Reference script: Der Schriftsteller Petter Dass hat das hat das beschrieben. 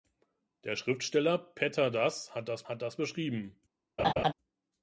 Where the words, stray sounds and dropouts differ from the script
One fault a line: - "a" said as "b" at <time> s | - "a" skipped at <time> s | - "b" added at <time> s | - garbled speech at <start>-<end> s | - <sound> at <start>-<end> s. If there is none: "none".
- laugh at 4.0-4.3 s